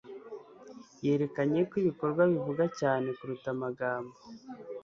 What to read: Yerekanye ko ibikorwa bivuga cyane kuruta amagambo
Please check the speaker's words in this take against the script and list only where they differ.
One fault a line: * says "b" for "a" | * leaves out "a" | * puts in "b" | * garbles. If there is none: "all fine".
all fine